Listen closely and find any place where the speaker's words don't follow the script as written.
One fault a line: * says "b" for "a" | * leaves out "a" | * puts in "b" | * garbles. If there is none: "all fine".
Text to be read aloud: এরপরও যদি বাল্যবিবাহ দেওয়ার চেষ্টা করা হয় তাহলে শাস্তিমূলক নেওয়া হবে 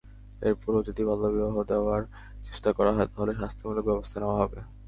* puts in "ব্যবস্থা"